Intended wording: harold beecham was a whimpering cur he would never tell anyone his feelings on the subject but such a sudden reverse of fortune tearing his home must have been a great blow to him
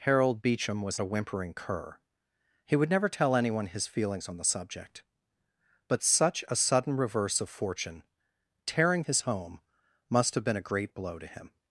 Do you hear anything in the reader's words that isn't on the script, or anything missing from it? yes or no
no